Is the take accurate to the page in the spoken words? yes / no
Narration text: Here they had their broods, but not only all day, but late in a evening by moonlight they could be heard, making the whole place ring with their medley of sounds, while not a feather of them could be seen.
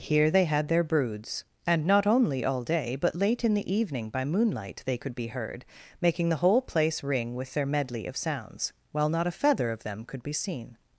no